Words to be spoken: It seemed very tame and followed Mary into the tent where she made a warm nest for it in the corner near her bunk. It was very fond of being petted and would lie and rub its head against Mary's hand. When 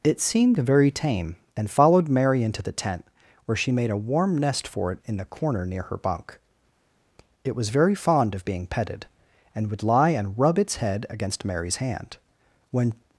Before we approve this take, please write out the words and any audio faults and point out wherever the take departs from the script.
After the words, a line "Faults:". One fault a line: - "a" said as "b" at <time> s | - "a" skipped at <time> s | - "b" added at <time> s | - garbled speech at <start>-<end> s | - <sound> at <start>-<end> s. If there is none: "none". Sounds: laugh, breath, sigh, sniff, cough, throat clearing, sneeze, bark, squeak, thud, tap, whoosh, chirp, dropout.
It seemed very tame and followed Mary into the tent where she made a warm nest for it in the corner near her bunk. It was very fond of being petted and would lie and rub its head against Mary's hand. When
Faults:
none